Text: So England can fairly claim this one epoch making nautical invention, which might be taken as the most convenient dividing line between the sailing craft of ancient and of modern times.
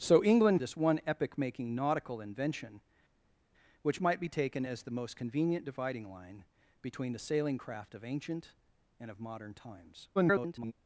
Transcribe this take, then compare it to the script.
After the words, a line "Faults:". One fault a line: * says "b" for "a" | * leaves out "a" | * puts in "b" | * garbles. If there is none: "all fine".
So England this one epoch making nautical invention, which might be taken as the most convenient dividing line between the sailing craft of ancient and of modern times. [garbled]
Faults:
* leaves out "can fairly claim"
* garbles